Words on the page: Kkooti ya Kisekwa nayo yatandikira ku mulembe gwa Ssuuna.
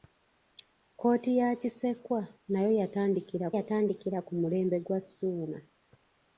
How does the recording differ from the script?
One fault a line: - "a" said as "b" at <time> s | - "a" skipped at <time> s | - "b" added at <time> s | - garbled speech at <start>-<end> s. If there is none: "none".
- "yatandikira" added at 3.6 s